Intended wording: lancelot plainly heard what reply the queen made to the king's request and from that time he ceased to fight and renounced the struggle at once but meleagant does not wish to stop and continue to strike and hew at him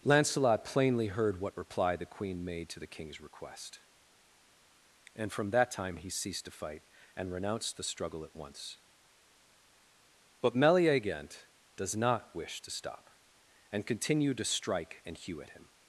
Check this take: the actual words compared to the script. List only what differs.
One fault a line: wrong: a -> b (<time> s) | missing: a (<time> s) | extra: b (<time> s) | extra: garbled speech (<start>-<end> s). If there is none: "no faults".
no faults